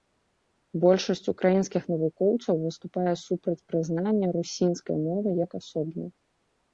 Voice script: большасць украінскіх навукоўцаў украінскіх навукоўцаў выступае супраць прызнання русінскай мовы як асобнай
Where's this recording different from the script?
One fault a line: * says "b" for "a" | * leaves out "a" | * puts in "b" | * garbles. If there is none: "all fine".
* leaves out "украінскіх навукоўцаў"